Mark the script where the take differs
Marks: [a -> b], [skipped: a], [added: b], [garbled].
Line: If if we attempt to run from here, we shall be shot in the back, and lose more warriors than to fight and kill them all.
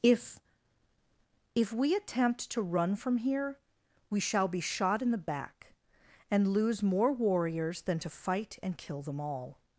If if we attempt to run from here, we shall be shot in the back, and lose more warriors than to fight and kill them all.